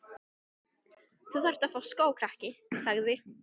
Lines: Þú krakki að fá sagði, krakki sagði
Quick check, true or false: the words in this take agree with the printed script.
false